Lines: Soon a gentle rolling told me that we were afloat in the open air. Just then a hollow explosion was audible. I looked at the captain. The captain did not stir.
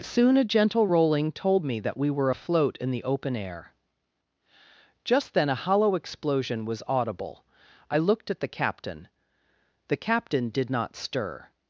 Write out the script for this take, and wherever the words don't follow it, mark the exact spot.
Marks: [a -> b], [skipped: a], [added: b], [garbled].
Soon a gentle rolling told me that we were afloat in the open air. Just then a hollow explosion was audible. I looked at the captain. The captain did not stir.